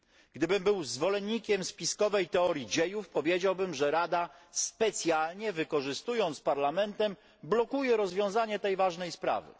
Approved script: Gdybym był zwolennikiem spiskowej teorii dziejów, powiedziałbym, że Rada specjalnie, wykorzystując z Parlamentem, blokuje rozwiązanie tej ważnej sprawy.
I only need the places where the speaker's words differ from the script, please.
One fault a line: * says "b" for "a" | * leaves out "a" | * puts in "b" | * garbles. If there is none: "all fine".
all fine